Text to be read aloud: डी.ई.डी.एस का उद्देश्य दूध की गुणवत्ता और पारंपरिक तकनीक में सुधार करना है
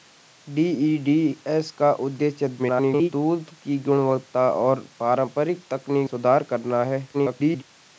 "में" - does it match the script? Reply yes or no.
no